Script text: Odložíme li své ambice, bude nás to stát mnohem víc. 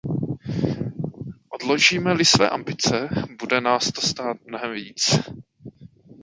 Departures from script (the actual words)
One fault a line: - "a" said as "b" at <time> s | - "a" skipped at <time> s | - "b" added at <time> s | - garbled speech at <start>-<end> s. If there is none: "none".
none